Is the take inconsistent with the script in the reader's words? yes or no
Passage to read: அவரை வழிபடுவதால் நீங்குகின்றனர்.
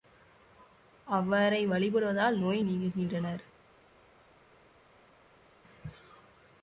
yes